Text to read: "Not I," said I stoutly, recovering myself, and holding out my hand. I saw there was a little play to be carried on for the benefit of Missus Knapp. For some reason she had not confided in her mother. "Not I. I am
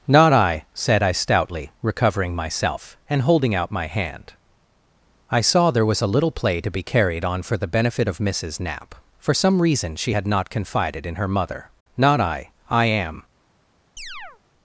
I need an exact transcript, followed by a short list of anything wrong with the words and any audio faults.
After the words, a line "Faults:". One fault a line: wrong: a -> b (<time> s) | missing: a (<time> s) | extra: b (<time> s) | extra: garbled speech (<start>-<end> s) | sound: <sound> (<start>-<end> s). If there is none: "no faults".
"Not I," said I stoutly, recovering myself, and holding out my hand. I saw there was a little play to be carried on for the benefit of Missus Knapp. For some reason she had not confided in her mother. "Not I. I am
Faults:
sound: chirp (14.0-14.4 s)